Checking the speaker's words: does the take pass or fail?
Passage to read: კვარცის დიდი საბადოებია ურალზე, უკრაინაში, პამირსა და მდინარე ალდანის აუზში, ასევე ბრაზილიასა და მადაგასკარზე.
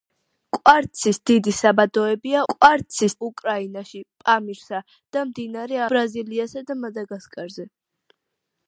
fail